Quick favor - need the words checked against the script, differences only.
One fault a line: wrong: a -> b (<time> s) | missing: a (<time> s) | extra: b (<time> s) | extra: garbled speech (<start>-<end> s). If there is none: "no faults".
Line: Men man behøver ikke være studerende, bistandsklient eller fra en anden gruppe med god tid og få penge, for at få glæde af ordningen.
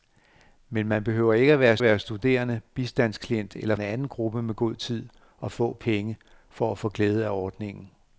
extra: være (1.8 s)
missing: fra (3.7 s)